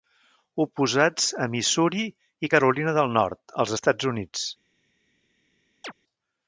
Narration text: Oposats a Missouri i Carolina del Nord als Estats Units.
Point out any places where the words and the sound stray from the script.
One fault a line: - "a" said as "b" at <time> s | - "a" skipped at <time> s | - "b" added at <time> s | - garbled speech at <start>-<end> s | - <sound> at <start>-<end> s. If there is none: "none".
- chirp at 5.8-5.9 s